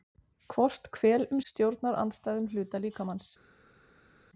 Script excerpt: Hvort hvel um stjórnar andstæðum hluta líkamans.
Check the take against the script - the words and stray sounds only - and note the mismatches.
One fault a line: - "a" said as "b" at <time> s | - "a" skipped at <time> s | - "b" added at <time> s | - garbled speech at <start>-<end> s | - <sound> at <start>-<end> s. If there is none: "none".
none